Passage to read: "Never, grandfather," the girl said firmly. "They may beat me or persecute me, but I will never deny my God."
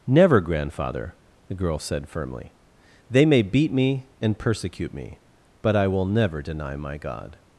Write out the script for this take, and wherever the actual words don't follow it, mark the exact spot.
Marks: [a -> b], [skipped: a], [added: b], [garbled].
"Never, grandfather," the girl said firmly. "They may beat me [or -> and] persecute me, but I will never deny my God."